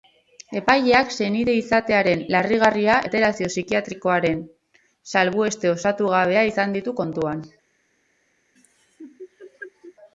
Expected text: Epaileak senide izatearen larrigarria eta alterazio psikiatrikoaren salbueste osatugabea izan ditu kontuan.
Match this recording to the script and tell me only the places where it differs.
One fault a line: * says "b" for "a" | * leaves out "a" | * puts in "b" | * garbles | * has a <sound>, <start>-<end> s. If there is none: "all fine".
* leaves out "eta"
* has a laugh, 8.6-10.0 s